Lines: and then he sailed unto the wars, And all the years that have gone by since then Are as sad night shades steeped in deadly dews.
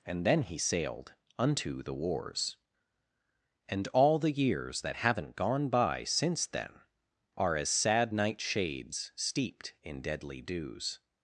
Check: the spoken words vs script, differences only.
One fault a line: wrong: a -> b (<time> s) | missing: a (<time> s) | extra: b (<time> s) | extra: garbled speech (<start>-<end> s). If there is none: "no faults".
wrong: have -> haven't (4.9 s)